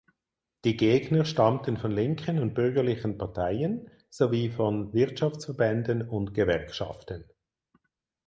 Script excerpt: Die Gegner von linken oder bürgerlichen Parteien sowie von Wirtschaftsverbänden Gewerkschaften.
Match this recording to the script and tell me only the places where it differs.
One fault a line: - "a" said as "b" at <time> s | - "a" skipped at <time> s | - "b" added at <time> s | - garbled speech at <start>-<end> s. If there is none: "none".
- "stammten" added at 1.2 s
- "oder" said as "und" at 2.4 s
- "und" added at 6.1 s